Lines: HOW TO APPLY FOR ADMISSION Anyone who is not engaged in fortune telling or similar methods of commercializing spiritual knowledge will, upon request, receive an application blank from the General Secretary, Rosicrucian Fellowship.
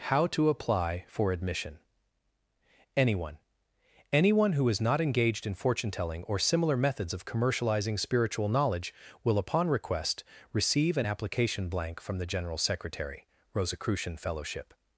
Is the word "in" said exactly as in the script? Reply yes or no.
yes